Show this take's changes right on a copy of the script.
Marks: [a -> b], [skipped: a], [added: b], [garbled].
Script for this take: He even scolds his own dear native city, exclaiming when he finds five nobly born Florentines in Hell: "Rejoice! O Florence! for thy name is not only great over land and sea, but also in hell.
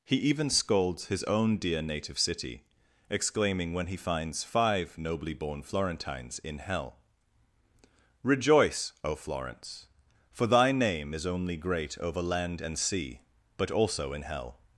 He even scolds his own dear native city, exclaiming when he finds five nobly born Florentines in Hell: "Rejoice! O Florence! for thy name is [skipped: not] only great over land and sea, but also in hell.